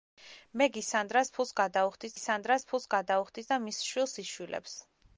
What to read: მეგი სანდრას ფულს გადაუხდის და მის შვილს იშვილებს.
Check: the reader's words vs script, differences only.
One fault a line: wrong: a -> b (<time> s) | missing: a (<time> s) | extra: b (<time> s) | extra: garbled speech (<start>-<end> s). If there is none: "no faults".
extra: სანდრას ფულს გადაუხდის (2.2 s)